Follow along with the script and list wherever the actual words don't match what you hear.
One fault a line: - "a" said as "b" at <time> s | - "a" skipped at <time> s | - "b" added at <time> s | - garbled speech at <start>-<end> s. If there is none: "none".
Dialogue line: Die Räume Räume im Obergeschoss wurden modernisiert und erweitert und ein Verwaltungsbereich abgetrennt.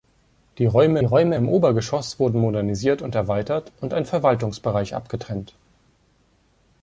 none